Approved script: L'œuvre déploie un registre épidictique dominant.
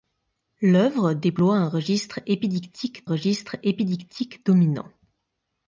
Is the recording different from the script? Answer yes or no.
yes